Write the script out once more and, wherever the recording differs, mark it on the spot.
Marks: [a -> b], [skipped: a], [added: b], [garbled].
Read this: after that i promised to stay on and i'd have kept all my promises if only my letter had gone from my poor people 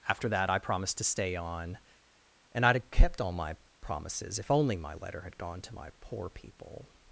after that i promised to stay on and i'd have kept all my promises if only my letter had gone [from -> to] my poor people